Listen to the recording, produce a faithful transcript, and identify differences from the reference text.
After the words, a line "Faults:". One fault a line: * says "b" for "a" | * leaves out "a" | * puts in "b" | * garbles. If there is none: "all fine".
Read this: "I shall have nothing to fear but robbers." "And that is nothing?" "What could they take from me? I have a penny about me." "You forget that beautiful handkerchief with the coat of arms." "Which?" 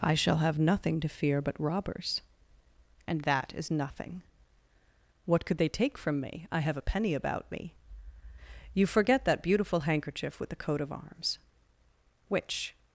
"I shall have nothing to fear but robbers." "And that is nothing?" "What could they take from me? I have a penny about me." "You forget that beautiful handkerchief with the coat of arms." "Which?"
Faults:
all fine